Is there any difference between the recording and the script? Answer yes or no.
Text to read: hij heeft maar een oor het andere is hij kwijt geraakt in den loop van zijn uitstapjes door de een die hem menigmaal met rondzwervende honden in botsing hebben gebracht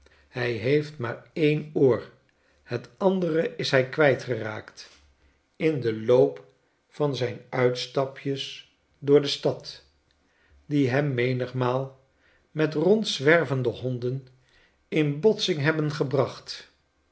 yes